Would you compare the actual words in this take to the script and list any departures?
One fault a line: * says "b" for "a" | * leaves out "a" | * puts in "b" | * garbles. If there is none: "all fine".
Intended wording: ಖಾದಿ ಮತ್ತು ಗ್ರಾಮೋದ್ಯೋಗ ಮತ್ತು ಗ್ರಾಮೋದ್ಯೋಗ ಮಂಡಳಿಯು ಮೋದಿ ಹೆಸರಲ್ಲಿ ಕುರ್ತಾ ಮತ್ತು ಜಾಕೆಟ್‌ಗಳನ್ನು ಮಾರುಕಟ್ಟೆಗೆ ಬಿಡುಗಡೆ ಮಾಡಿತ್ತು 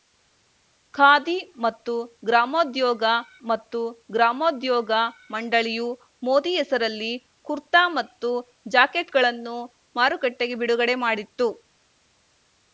all fine